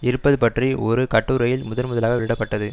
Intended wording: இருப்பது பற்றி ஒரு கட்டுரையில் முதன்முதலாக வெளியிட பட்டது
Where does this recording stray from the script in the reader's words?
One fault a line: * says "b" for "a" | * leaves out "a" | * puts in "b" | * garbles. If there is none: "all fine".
all fine